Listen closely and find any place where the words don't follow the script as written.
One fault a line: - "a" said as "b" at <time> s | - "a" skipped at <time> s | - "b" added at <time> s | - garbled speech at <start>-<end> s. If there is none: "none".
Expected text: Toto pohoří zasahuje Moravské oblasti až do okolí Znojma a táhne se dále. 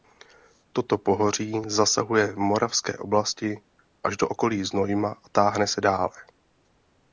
- "v" added at 2.3 s